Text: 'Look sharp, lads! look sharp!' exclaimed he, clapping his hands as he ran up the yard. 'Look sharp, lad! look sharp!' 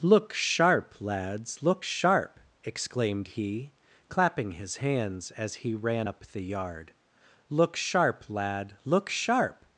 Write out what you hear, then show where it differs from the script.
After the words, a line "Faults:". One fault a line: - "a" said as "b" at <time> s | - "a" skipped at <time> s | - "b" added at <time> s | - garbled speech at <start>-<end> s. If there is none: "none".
'Look sharp, lads! look sharp!' exclaimed he, clapping his hands as he ran up the yard. 'Look sharp, lad! look sharp!'
Faults:
none